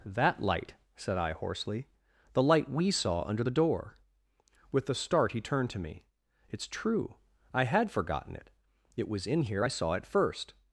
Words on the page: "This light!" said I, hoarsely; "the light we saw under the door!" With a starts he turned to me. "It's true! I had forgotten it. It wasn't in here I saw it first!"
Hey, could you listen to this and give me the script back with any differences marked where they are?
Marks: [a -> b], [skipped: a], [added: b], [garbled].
["This -> That] light!" said I, hoarsely; "the light we saw under the door!" With a [starts -> start] he turned to me. "It's true! I had forgotten it. It [wasn't -> was] in here I saw it first!"